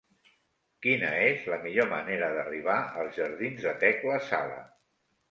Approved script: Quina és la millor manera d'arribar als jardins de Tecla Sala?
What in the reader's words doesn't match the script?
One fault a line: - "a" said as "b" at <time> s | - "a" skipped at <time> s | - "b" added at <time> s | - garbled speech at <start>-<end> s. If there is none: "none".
none